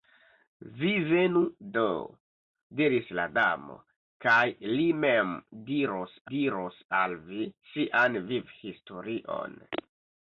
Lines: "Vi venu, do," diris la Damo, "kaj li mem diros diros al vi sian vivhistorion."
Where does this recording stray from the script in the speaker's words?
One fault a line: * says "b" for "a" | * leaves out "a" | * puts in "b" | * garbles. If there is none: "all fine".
all fine